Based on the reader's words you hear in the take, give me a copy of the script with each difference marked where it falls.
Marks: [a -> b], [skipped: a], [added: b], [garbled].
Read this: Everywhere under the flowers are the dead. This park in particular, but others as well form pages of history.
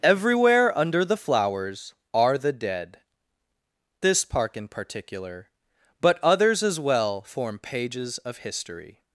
Everywhere under the flowers are the dead. This park in particular, but others as well form pages of history.